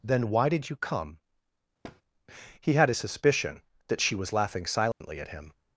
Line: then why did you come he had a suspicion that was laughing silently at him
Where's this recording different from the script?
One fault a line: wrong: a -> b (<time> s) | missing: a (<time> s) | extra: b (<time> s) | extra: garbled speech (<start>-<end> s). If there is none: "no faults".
extra: she (4.0 s)